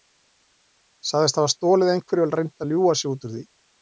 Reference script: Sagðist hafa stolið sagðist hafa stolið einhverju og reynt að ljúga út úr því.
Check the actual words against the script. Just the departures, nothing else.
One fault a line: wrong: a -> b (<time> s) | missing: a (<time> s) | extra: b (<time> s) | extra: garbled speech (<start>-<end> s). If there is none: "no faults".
missing: sagðist hafa stolið (1.9 s)
extra: sig (3.0 s)